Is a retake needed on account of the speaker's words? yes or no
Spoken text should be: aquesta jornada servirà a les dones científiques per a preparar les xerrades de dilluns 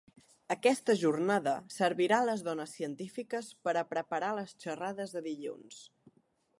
no